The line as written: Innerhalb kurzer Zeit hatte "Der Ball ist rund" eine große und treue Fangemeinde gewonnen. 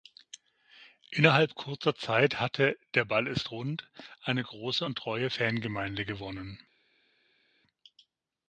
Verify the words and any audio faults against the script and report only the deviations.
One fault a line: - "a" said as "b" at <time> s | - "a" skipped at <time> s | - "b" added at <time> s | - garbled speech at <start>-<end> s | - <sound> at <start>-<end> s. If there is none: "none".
none